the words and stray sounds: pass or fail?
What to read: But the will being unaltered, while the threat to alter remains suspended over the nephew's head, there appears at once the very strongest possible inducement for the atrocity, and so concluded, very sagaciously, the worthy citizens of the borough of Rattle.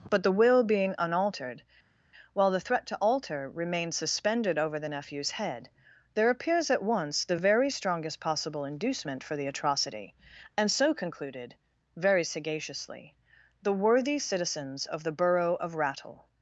pass